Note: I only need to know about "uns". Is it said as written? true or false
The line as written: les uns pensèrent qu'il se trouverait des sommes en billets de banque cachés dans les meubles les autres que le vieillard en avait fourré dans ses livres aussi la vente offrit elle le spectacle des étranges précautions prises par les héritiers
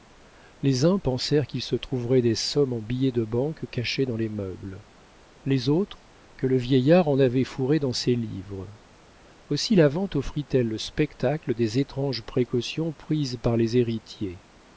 true